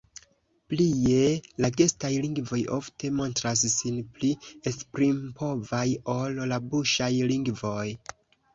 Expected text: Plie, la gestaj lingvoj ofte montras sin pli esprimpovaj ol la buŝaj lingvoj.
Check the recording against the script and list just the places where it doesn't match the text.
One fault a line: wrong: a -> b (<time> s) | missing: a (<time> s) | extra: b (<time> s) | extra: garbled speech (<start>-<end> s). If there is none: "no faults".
no faults